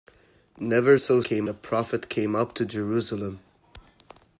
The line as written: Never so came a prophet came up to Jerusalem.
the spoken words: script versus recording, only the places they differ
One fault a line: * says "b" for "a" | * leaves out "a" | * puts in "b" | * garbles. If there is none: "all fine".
all fine